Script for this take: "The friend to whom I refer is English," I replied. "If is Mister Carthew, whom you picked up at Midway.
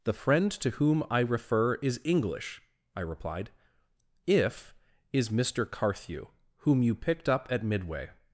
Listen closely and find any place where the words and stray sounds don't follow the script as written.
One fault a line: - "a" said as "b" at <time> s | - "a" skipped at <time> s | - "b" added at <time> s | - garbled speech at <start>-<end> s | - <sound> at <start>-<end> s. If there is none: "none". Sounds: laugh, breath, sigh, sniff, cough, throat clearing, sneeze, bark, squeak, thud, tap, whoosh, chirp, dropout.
none